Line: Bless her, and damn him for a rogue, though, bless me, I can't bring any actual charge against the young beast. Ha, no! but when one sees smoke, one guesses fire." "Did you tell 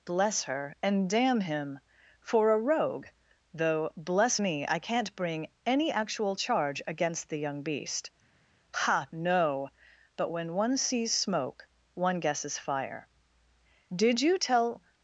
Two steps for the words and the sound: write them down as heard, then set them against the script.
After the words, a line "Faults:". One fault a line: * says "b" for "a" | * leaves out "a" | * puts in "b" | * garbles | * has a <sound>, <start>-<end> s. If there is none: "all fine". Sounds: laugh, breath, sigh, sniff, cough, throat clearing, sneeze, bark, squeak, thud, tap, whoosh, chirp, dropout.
Bless her, and damn him for a rogue, though, bless me, I can't bring any actual charge against the young beast. Ha, no! but when one sees smoke, one guesses fire." "Did you tell
Faults:
all fine